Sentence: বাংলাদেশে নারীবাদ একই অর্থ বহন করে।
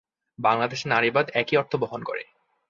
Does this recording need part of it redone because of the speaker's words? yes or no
no